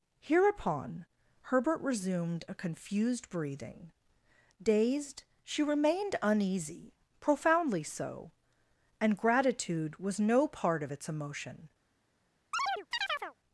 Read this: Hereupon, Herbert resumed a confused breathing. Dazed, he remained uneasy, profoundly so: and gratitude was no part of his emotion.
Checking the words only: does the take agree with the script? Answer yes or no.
no